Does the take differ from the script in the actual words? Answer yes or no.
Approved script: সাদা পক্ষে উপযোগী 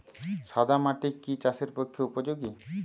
yes